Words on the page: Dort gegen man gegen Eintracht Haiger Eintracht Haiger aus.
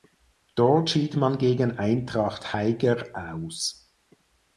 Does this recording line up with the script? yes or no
no